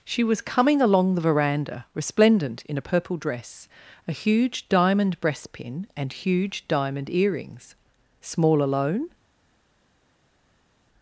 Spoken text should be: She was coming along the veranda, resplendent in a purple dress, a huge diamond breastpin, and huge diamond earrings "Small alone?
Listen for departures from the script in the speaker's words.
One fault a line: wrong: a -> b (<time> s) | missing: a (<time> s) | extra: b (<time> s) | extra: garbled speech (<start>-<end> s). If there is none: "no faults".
no faults